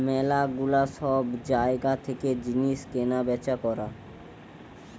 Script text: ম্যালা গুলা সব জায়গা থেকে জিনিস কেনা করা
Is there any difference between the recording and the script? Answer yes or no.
yes